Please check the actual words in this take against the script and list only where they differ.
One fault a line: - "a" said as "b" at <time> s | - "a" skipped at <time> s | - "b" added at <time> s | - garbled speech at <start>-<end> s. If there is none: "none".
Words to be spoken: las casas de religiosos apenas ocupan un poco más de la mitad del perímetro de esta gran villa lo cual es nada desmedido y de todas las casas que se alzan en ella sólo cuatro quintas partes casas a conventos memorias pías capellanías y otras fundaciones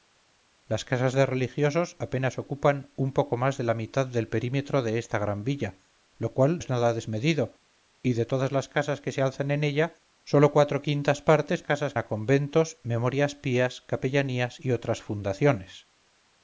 none